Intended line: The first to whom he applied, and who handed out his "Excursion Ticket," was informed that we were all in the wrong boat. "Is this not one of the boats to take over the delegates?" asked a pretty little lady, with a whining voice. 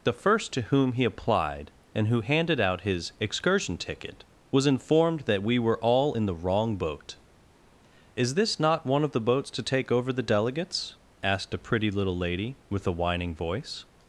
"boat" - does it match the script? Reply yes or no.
yes